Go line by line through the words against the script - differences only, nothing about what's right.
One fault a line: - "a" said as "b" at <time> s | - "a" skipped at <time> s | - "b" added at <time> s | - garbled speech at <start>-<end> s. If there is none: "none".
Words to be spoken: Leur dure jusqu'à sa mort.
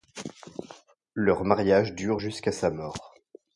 - "mariage" added at 1.4 s